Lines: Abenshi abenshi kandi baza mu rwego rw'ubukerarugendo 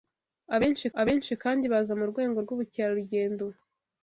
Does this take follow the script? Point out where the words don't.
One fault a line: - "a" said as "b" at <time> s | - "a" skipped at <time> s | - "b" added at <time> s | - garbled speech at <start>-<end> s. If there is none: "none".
none